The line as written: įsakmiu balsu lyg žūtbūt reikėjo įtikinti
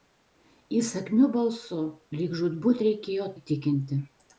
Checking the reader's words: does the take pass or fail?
pass